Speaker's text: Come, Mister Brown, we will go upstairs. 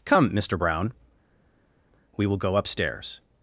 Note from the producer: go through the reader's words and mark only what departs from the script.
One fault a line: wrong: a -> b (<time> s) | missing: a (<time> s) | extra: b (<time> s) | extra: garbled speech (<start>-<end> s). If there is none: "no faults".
no faults